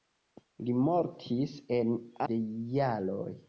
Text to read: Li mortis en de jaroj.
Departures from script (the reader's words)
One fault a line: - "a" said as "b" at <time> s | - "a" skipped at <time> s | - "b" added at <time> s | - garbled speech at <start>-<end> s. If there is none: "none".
none